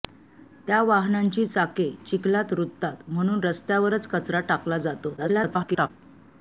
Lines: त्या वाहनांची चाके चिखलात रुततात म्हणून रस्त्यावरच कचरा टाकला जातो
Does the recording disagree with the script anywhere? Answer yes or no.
yes